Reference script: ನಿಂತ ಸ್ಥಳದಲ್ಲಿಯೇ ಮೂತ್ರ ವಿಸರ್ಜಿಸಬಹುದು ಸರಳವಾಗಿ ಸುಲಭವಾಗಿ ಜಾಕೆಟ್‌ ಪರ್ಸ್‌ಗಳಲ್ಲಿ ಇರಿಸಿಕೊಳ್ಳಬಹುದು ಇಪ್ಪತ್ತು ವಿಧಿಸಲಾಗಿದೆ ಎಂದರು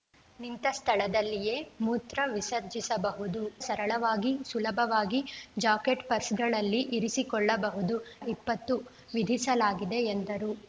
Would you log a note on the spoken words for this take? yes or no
no